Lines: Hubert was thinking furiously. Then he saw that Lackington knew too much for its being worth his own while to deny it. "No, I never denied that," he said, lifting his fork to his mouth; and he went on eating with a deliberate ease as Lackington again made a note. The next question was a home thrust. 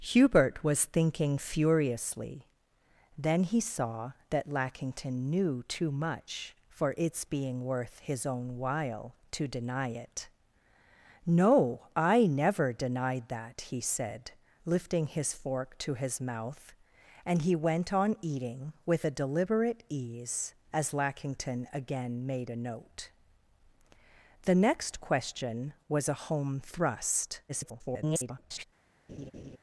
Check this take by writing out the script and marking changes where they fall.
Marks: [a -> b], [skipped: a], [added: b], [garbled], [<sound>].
Hubert was thinking furiously. Then he saw that Lackington knew too much for its being worth his own while to deny it. "No, I never denied that," he said, lifting his fork to his mouth; and he went on eating with a deliberate ease as Lackington again made a note. The next question was a home thrust. [garbled] [laugh]